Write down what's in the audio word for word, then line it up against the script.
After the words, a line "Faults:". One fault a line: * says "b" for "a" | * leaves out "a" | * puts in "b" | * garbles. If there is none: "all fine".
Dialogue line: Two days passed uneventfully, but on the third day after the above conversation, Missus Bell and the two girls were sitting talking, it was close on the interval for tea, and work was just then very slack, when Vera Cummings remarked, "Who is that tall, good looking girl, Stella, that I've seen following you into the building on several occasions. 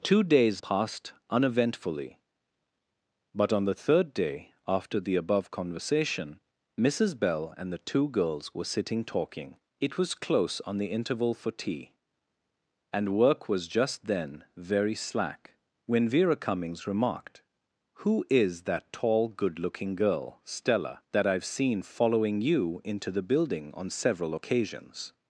Two days passed uneventfully, but on the third day after the above conversation, Missus Bell and the two girls were sitting talking, it was close on the interval for tea, and work was just then very slack, when Vera Cummings remarked, "Who is that tall, good looking girl, Stella, that I've seen following you into the building on several occasions.
Faults:
all fine